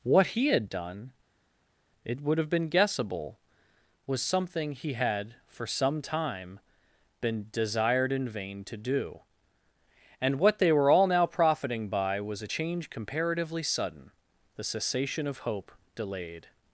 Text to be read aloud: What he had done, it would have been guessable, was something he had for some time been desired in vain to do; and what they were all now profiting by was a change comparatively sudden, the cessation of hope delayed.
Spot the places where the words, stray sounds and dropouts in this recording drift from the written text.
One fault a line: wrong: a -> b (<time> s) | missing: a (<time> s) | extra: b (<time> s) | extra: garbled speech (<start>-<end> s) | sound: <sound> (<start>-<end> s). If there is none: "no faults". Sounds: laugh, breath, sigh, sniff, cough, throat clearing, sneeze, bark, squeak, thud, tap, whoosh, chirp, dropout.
no faults